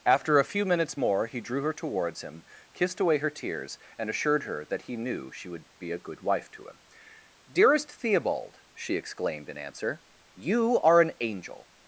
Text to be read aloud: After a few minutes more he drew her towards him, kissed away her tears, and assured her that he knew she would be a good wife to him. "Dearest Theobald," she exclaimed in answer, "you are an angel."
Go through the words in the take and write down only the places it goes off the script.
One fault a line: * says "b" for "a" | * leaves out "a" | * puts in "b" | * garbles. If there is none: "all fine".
all fine